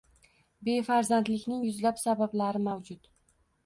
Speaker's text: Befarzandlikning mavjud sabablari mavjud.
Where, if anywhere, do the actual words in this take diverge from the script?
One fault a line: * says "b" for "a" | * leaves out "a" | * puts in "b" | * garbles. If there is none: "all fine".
* says "yuzlab" for "mavjud"